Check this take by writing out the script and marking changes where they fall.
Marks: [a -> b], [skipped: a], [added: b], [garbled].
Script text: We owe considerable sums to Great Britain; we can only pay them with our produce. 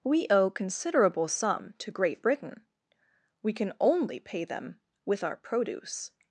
We owe considerable [sums -> sum] to Great Britain; we can only pay them with our produce.